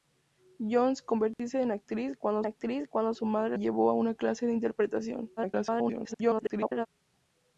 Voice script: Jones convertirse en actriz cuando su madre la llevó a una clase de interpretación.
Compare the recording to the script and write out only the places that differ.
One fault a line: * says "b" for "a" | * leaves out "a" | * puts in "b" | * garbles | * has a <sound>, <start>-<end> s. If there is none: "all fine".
* has a dropout, 1.3-1.4 s
* puts in "actriz cuando"
* leaves out "la"
* garbles